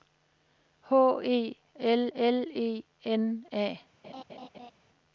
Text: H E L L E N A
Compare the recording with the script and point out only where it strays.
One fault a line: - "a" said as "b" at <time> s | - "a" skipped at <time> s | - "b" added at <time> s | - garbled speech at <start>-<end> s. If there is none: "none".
none